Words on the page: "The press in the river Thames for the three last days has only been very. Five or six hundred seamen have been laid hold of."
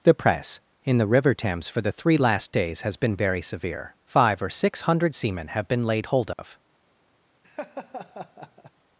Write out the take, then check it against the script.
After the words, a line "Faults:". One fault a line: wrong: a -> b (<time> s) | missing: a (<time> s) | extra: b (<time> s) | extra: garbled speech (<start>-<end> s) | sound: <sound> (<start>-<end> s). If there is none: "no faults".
"The press in the river Thames for the three last days has been very severe. Five or six hundred seamen have been laid hold of."
Faults:
missing: only (3.0 s)
extra: severe (3.4 s)
sound: dropout (6.3-6.4 s)
sound: laugh (7.4-8.7 s)